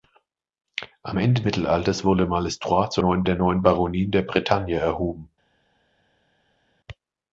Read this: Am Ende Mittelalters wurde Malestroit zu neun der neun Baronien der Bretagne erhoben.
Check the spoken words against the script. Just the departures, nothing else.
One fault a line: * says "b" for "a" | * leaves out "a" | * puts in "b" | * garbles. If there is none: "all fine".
all fine